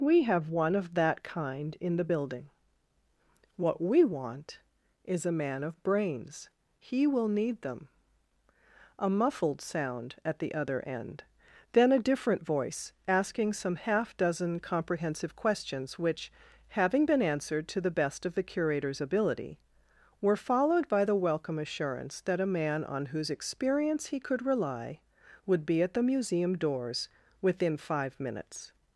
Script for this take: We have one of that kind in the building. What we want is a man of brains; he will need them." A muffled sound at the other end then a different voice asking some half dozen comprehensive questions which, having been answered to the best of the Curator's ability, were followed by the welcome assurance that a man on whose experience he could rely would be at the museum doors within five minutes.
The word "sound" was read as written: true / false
true